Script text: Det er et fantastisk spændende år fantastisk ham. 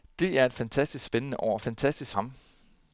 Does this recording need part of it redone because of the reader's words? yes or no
no